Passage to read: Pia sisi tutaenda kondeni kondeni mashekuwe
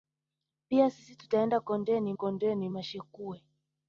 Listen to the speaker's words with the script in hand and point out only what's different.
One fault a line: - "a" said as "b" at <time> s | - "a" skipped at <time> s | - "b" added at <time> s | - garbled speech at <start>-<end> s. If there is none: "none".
none